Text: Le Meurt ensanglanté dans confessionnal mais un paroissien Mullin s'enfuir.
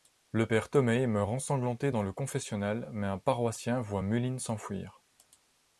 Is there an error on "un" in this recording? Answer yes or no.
no